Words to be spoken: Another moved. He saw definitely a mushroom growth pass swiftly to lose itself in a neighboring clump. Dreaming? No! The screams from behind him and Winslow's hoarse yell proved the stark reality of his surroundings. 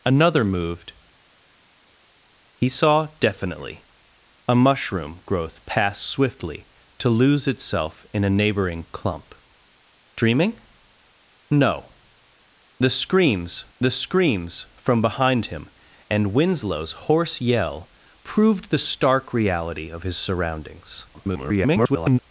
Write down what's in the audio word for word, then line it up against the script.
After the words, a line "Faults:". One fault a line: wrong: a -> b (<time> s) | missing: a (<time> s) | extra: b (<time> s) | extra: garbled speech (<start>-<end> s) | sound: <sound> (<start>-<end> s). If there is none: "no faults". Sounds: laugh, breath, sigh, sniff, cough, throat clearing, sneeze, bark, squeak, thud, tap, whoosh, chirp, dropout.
Another moved. He saw definitely a mushroom growth pass swiftly to lose itself in a neighboring clump. Dreaming? No! The screams the screams from behind him and Winslow's hoarse yell proved the stark reality of his surroundings. [garbled]
Faults:
extra: the screams (13.8 s)
extra: garbled speech (21.1-22.2 s)